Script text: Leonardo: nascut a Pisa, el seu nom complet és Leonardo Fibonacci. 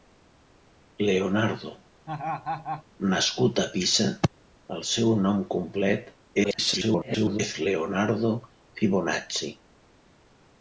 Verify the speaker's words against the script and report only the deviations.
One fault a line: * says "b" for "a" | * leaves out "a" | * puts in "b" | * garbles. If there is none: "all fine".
* garbles